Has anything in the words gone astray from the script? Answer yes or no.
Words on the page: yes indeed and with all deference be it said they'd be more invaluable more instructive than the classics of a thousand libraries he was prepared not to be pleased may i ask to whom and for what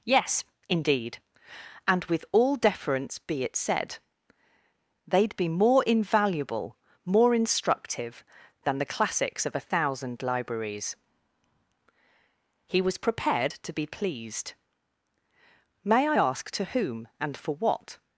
yes